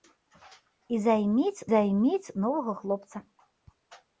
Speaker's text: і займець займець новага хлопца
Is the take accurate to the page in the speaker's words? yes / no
yes